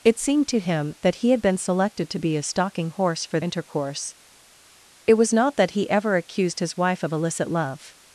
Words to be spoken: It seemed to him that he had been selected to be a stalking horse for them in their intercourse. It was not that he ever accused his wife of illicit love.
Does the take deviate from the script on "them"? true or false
true